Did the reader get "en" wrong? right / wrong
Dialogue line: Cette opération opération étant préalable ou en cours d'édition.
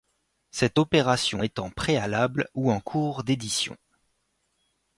right